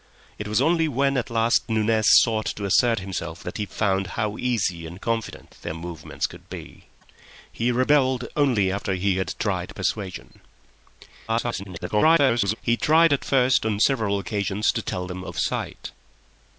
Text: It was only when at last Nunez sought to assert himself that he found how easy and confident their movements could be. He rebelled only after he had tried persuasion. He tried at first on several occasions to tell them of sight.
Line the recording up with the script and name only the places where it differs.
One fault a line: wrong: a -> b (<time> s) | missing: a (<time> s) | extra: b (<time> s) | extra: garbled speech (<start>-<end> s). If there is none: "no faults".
extra: garbled speech (11.3-12.6 s)